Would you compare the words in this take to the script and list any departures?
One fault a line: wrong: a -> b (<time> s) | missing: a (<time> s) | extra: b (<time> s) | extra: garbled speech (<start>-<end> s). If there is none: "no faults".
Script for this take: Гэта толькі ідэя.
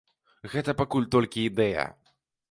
extra: пакуль (0.8 s)